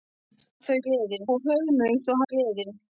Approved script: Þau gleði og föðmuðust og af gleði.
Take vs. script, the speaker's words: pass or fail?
pass